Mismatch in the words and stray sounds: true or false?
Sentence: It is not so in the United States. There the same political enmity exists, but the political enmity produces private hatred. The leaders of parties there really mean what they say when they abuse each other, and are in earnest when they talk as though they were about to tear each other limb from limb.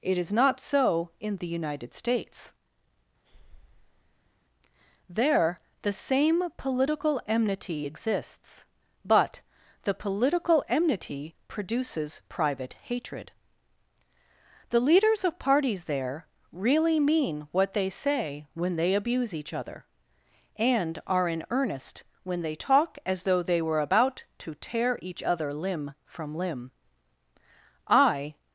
true